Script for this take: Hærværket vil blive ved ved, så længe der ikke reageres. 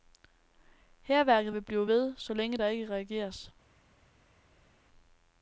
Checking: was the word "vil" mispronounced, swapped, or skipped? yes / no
no